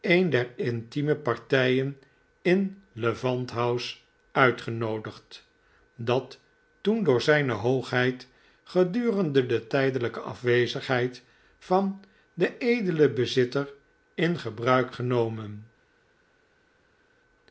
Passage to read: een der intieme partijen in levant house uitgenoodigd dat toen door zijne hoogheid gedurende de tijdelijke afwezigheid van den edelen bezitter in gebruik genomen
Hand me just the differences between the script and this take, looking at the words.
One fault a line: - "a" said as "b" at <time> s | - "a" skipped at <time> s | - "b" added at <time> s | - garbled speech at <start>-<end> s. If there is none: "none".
none